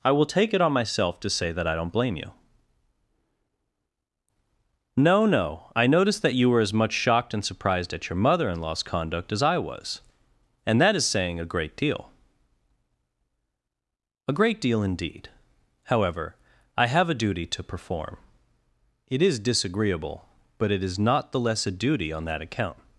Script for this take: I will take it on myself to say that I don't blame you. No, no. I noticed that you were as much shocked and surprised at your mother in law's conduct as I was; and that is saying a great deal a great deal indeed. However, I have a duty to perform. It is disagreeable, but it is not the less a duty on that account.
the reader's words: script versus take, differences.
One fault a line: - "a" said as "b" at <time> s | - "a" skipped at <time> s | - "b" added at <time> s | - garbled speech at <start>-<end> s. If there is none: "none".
none